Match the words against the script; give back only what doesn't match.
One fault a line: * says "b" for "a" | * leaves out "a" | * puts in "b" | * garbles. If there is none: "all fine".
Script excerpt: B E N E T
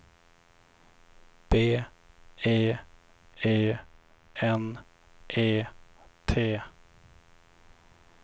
* puts in "E"